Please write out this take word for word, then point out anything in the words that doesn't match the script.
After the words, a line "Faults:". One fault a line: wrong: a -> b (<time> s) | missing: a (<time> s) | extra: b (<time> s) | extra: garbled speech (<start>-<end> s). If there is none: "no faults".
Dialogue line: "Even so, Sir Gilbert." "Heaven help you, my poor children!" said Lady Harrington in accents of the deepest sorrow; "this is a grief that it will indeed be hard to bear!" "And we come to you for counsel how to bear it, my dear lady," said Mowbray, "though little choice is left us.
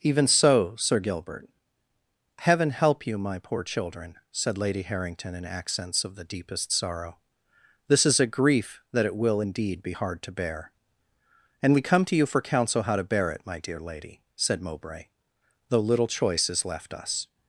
"Even so, Sir Gilbert." "Heaven help you, my poor children!" said Lady Harrington in accents of the deepest sorrow; "this is a grief that it will indeed be hard to bear!" "And we come to you for counsel how to bear it, my dear lady," said Mowbray, "though little choice is left us.
Faults:
no faults